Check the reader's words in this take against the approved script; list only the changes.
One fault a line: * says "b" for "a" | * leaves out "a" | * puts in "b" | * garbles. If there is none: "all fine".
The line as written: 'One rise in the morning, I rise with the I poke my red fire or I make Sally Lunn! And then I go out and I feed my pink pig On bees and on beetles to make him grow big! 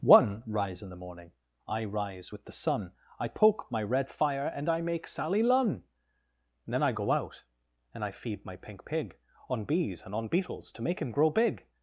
* puts in "sun"
* says "and" for "or"